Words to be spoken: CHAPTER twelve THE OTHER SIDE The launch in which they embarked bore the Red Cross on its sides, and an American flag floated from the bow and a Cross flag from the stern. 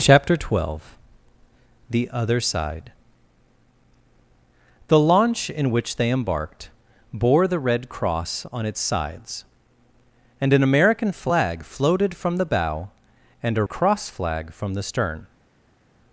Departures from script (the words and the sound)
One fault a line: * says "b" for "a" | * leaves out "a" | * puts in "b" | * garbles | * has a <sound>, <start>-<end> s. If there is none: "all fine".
all fine